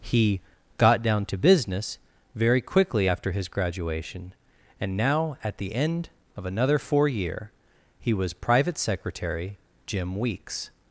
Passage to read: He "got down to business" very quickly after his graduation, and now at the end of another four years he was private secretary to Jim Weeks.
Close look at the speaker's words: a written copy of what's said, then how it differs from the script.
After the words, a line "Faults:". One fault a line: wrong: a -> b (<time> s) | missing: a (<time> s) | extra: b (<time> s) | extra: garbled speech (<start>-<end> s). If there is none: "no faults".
He "got down to business" very quickly after his graduation, and now at the end of another four year he was private secretary Jim Weeks.
Faults:
wrong: years -> year (7.1 s)
missing: to (9.6 s)